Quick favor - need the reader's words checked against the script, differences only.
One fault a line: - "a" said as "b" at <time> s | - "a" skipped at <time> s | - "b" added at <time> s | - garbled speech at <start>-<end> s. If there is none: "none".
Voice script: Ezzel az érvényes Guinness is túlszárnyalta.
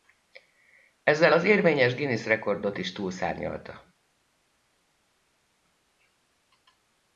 - "rekordot" added at 2.2 s